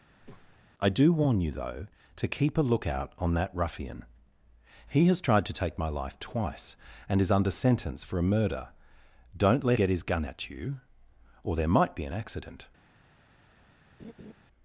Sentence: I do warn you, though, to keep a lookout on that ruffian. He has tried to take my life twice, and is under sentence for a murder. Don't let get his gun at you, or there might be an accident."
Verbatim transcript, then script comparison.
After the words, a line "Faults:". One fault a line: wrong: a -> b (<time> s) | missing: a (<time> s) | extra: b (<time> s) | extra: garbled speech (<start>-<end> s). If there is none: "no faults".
I do warn you, though, to keep a lookout on that ruffian. He has tried to take my life twice, and is under sentence for a murder. Don't let get his gun at you, or there might be an accident."
Faults:
no faults